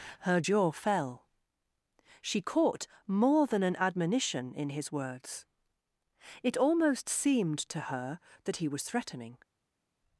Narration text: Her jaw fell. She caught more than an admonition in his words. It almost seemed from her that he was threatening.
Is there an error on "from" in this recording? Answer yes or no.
yes